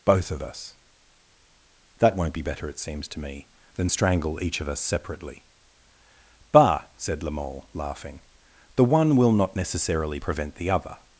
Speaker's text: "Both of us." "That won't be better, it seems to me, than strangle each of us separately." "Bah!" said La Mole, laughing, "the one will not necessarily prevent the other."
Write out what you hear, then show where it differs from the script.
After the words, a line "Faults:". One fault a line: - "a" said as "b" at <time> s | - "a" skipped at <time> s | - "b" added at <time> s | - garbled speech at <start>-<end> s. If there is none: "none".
"Both of us." "That won't be better, it seems to me, than strangle each of us separately." "Bah!" said La Mole, laughing, "the one will not necessarily prevent the other."
Faults:
none